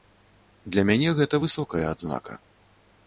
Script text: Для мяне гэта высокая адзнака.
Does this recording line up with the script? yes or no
yes